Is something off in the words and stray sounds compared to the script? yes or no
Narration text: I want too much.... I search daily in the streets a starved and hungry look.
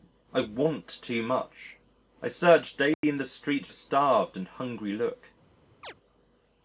yes